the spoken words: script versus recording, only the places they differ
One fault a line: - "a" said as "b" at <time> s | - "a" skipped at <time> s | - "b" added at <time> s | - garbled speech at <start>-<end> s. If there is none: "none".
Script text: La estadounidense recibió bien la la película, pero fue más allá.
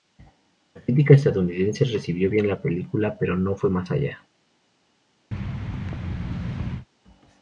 - "crítica" added at 0.8 s
- "la" skipped at 2.6 s
- "no" added at 3.3 s